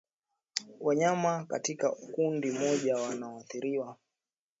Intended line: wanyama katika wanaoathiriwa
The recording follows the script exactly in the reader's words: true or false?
false